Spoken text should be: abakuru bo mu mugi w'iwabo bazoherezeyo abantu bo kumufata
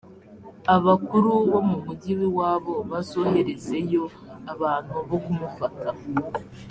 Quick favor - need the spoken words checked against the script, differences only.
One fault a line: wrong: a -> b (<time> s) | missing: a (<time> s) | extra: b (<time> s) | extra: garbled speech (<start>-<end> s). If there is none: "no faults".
no faults